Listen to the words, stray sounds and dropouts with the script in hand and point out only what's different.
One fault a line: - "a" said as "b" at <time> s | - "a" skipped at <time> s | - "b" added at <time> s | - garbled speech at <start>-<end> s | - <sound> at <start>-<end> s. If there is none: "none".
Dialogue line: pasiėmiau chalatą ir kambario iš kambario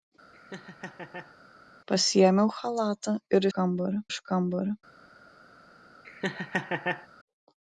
- laugh at 0.3-1.4 s
- laugh at 6.0-7.1 s